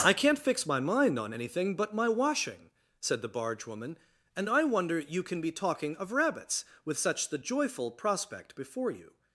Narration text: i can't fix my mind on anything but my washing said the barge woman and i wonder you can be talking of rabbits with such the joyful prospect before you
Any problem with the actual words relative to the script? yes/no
no